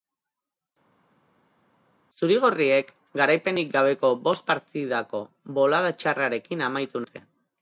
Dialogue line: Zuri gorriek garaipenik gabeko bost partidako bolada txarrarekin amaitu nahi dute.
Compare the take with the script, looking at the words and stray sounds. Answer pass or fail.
fail